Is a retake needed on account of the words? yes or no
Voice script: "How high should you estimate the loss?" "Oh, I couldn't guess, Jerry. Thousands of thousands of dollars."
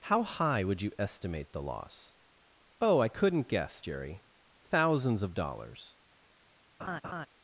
yes